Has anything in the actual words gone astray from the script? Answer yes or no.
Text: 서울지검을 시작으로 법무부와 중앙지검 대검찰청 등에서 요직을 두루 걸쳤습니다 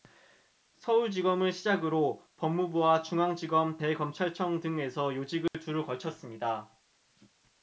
no